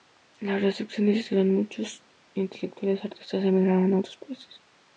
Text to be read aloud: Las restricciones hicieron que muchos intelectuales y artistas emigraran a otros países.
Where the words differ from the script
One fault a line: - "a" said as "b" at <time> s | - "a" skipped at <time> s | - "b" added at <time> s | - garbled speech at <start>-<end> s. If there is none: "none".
none